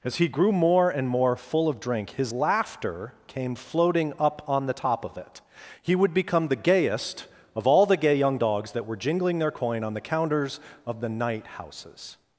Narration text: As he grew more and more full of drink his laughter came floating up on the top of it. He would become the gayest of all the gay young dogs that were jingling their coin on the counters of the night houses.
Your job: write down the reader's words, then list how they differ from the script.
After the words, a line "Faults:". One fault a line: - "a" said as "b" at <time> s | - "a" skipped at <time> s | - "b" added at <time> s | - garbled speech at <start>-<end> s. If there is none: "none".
As he grew more and more full of drink his laughter came floating up on the top of it. He would become the gayest of all the gay young dogs that were jingling their coin on the counters of the night houses.
Faults:
none